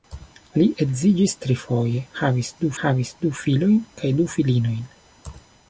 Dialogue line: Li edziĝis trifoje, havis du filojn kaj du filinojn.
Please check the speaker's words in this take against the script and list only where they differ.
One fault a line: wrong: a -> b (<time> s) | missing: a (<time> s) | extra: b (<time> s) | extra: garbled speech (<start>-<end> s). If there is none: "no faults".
extra: havis du (2.8 s)